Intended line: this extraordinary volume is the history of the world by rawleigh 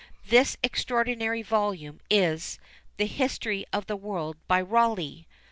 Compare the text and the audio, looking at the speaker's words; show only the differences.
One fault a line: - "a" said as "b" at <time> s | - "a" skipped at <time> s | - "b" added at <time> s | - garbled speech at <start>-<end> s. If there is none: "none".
none